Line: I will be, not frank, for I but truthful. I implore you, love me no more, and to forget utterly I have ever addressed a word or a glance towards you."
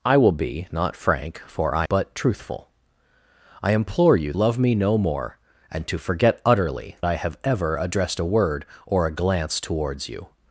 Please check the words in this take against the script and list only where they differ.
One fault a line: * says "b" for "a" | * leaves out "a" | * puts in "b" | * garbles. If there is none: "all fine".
all fine